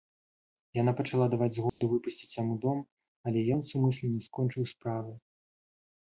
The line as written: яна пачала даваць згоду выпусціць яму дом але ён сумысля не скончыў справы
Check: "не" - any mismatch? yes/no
no